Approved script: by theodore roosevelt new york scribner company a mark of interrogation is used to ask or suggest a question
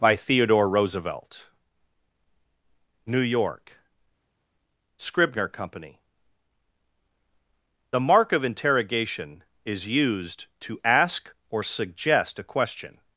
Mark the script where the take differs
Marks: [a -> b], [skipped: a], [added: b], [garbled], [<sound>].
by theodore roosevelt new york scribner company [a -> the] mark of interrogation is used to ask or suggest a question